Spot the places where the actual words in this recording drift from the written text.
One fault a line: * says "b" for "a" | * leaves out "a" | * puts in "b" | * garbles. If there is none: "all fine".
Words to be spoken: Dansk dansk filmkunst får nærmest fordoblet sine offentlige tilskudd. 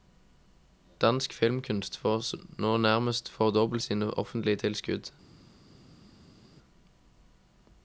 * leaves out "dansk"
* puts in "nå"